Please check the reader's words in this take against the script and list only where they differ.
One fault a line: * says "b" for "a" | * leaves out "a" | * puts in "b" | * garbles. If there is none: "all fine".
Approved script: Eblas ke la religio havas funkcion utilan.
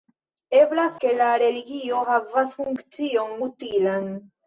all fine